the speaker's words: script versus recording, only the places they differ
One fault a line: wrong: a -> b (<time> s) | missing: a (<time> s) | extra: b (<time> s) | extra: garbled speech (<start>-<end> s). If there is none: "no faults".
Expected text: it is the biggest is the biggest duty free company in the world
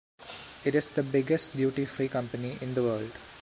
missing: is the biggest (1.6 s)